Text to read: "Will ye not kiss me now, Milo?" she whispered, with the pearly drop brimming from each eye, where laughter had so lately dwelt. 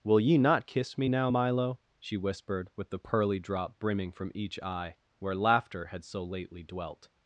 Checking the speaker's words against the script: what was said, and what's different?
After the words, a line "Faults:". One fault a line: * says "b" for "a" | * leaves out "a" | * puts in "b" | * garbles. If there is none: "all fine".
"Will ye not kiss me now, Milo?" she whispered, with the pearly drop brimming from each eye, where laughter had so lately dwelt.
Faults:
all fine